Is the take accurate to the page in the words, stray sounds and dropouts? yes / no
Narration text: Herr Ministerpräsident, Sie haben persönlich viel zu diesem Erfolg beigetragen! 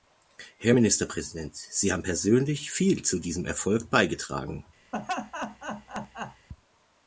no